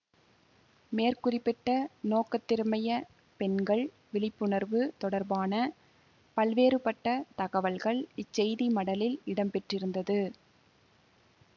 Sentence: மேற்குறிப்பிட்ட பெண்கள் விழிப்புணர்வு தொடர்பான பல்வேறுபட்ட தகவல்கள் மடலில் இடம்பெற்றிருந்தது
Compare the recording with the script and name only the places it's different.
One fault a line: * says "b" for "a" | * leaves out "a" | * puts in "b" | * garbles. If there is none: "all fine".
* puts in "நோக்கத்திற்கமைய"
* puts in "இச்செய்தி"